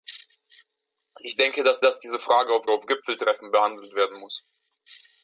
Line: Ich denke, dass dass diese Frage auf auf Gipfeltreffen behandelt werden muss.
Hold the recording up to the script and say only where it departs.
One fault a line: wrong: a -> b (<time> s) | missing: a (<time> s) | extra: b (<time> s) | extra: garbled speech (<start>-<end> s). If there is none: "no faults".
no faults